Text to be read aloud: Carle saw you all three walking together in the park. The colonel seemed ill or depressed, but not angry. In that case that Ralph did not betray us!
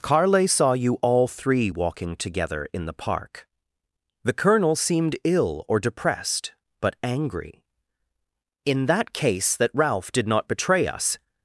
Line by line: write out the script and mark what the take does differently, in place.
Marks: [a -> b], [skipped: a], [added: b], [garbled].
Carle saw you all three walking together in the park. The colonel seemed ill or depressed, but [skipped: not] angry. In that case that Ralph did not betray us!